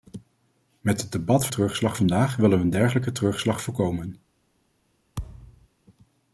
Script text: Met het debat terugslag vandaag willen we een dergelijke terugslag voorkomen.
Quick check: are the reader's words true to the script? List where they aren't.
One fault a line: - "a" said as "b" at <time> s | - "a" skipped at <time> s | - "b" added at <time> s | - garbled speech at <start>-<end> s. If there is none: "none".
none